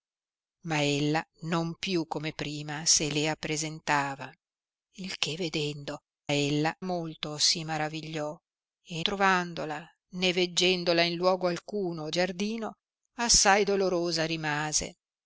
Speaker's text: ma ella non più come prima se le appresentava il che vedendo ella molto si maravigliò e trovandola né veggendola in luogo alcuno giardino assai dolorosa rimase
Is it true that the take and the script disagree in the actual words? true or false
false